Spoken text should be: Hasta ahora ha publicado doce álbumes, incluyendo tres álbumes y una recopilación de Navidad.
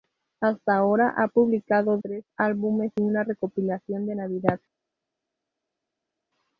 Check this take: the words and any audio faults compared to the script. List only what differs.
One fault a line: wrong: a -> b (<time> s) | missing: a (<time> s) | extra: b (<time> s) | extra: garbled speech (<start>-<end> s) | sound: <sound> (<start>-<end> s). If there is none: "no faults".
missing: doce álbumes incluyendo (2.0 s)
missing: y (2.9 s)